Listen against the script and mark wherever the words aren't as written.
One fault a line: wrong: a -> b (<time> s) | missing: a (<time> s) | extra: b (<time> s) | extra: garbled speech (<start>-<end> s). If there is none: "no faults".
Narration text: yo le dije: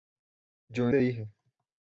no faults